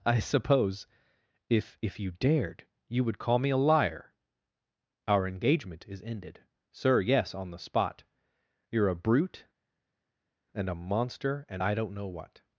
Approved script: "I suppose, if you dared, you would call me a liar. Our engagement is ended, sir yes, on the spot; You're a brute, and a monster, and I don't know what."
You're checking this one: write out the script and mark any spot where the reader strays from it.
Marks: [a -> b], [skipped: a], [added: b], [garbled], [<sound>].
"I suppose, if [added: if] you dared, you would call me a liar. Our engagement is ended, sir yes, on the spot; You're a brute, and a monster, and I don't know what."